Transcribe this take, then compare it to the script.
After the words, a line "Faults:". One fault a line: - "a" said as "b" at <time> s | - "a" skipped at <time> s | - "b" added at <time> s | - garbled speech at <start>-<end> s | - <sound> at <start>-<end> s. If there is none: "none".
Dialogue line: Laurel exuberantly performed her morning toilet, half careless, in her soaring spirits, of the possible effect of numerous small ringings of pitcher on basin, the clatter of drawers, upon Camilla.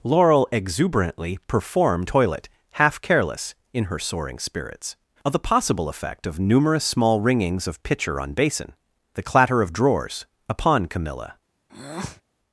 Laurel exuberantly performed toilet, half careless, in her soaring spirits, of the possible effect of numerous small ringings of pitcher on basin, the clatter of drawers, upon Camilla.
Faults:
- "her morning" skipped at 2.1 s
- breath at 11.7-12.2 s